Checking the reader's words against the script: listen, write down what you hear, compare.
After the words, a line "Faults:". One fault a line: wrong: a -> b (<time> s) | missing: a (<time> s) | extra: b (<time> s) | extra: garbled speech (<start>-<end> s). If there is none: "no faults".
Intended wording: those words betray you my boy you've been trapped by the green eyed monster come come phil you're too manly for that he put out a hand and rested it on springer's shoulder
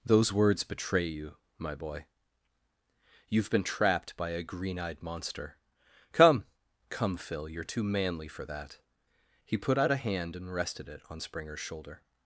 those words betray you my boy you've been trapped by a green eyed monster come come phil you're too manly for that he put out a hand and rested it on springer's shoulder
Faults:
wrong: the -> a (4.3 s)